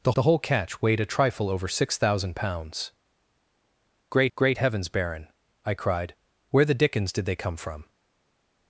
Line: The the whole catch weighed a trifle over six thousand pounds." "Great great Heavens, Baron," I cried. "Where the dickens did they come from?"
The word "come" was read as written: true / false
true